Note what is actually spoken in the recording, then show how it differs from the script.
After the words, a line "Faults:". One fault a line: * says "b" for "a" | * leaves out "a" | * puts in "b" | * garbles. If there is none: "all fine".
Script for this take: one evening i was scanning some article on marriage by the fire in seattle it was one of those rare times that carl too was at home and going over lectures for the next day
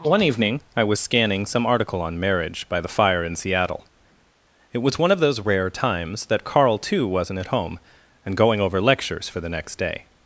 one evening i was scanning some article on marriage by the fire in seattle it was one of those rare times that carl too wasn't at home and going over lectures for the next day
Faults:
* says "wasn't" for "was"